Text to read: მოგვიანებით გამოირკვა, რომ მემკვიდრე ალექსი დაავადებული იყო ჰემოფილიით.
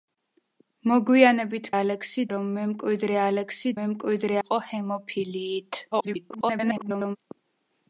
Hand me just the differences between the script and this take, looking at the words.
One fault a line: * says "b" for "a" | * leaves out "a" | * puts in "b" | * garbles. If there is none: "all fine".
* says "ალექსი" for "გამოირკვა"
* says "მემკვიდრე" for "დაავადებული"
* garbles